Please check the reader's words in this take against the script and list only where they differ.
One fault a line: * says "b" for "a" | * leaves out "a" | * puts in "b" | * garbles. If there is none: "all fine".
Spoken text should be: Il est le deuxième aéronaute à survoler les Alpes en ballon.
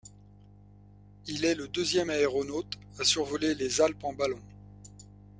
all fine